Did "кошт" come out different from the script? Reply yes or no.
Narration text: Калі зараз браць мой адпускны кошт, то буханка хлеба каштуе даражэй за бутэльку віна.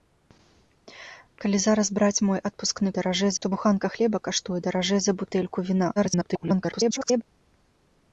yes